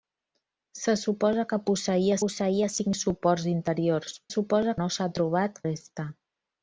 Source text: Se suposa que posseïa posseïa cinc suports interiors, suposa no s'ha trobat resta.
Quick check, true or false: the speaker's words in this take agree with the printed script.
true